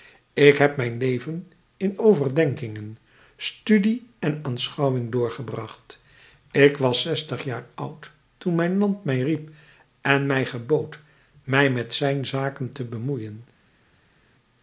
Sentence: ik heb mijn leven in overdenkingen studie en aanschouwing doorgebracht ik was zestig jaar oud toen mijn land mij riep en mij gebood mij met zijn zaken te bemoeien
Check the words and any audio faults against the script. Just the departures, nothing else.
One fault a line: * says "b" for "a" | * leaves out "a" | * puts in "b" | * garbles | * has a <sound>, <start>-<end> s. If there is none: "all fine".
all fine